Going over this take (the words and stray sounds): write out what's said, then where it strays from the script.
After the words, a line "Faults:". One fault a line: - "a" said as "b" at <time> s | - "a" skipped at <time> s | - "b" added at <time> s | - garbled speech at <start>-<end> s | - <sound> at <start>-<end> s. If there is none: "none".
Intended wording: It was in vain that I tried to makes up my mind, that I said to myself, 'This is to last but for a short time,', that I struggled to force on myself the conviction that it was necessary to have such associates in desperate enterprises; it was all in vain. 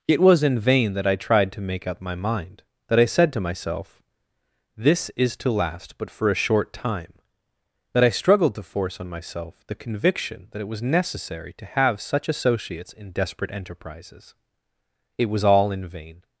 It was in vain that I tried to make up my mind, that I said to myself, 'This is to last but for a short time,', that I struggled to force on myself the conviction that it was necessary to have such associates in desperate enterprises; it was all in vain.
Faults:
- "makes" said as "make" at 1.6 s